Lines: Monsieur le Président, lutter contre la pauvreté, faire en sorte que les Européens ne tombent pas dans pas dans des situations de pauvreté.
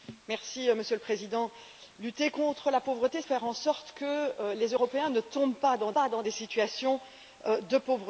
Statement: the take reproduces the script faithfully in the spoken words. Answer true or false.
true